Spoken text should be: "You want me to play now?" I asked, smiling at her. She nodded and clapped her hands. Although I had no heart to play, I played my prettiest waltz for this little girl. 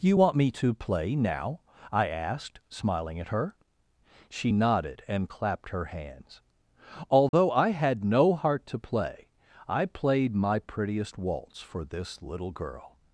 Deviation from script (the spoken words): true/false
false